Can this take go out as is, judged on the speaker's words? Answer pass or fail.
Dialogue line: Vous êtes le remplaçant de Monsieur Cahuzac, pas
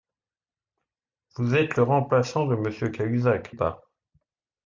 pass